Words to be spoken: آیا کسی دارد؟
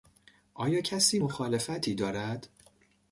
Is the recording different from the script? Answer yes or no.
yes